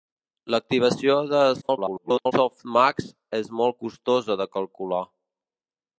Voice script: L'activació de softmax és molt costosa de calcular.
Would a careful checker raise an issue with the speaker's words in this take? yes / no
yes